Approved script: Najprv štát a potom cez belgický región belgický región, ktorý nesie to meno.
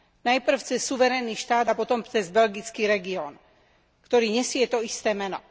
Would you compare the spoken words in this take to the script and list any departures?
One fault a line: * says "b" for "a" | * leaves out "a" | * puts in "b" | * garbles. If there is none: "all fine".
* puts in "cez suverénny"
* leaves out "belgický región"
* puts in "isté"